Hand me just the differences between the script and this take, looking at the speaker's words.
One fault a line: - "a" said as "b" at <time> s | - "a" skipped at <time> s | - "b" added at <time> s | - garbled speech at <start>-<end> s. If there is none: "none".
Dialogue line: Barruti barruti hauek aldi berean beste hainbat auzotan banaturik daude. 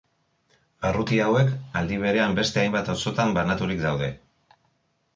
- "barruti" skipped at 1.2 s